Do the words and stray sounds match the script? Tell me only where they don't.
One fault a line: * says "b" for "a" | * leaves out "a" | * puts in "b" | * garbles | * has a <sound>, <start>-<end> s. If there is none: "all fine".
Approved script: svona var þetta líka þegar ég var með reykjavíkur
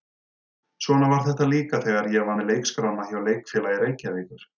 * puts in "leikskrána hjá leikfélagi"